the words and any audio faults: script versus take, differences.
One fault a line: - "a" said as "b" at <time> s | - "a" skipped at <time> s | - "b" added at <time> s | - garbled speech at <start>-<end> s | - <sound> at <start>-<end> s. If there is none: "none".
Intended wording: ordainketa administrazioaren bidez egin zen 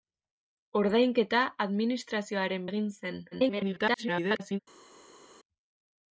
- "bidez" skipped at 2.6 s
- garbled speech at 3.3-4.6 s